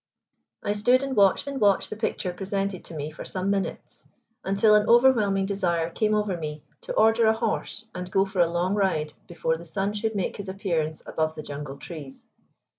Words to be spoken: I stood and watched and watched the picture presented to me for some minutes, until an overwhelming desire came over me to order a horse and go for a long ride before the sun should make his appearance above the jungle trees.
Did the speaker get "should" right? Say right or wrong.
right